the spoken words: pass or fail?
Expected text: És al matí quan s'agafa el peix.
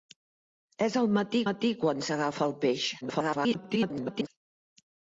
fail